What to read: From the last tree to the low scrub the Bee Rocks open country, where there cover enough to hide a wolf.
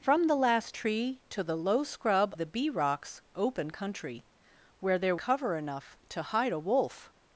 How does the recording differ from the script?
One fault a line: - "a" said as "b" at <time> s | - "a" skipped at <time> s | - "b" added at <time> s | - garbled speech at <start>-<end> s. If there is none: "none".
none